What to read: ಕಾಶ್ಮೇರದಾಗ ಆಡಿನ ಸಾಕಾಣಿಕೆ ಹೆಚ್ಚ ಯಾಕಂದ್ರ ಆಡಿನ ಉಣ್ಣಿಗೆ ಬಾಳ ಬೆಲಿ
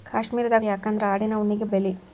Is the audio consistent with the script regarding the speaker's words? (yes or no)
no